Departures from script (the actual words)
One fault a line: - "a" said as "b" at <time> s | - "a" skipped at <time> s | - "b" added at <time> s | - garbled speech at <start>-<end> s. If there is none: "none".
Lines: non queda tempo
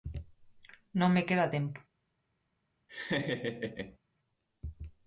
- "me" added at 1.1 s